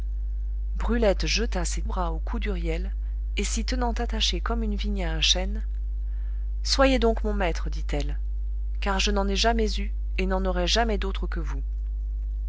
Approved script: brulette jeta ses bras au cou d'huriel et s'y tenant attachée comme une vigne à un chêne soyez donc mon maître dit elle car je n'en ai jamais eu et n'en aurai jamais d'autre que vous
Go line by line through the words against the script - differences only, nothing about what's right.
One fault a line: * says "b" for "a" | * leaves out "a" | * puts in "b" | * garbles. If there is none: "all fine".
all fine